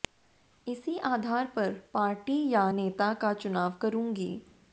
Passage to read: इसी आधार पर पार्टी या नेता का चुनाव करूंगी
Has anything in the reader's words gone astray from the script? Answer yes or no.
no